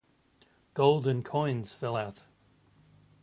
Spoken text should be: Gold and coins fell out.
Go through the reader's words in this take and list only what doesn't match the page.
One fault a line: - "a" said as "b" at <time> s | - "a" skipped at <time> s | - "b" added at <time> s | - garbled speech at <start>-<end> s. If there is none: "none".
none